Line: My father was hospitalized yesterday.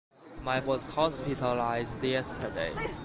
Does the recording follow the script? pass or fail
fail